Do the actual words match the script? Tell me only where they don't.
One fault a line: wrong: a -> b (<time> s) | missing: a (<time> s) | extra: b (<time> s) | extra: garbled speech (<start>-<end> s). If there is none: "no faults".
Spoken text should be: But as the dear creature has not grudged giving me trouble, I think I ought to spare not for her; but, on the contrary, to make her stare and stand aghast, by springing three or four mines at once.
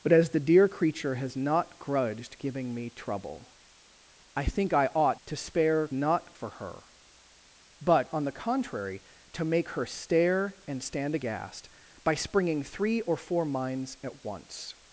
no faults